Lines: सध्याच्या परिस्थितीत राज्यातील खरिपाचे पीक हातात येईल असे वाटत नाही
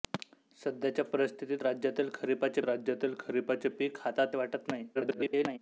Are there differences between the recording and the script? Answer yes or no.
yes